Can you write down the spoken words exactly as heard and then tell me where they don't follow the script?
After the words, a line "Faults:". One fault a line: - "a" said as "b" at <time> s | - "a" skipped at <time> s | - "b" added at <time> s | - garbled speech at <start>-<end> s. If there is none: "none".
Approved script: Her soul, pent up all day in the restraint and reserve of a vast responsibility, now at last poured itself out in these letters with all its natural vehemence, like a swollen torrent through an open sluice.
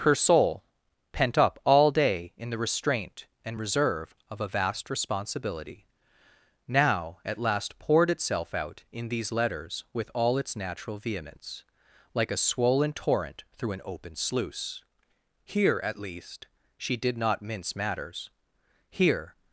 Her soul, pent up all day in the restraint and reserve of a vast responsibility, now at last poured itself out in these letters with all its natural vehemence, like a swollen torrent through an open sluice. Here, at least, she did not mince matters. Here
Faults:
- "Here at least she did not mince matters Here" added at 15.4 s